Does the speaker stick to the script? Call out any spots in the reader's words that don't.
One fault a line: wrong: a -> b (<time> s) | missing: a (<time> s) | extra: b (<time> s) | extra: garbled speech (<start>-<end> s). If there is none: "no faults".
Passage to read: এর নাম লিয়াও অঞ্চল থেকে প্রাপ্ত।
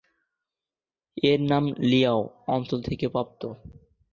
no faults